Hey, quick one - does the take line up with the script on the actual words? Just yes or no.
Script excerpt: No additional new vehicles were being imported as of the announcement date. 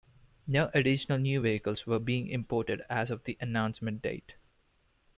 yes